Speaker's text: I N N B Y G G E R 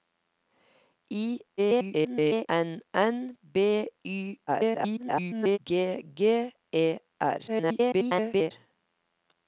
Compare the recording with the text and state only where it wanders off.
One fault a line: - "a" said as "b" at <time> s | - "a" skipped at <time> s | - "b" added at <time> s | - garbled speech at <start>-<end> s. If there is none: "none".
- garbled speech at 1.6-2.5 s
- garbled speech at 4.5-5.6 s
- garbled speech at 7.5-8.5 s